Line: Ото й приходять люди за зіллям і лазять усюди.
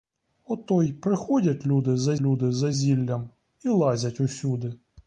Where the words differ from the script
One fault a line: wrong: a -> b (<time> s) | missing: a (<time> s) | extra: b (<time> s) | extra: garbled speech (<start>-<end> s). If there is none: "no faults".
extra: люди за (2.2 s)